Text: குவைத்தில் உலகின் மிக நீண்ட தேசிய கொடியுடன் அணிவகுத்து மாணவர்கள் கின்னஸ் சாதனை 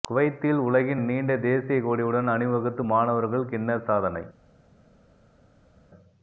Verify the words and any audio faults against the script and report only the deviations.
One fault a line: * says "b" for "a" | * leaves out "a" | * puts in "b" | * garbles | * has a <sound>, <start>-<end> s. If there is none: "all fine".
* leaves out "மிக"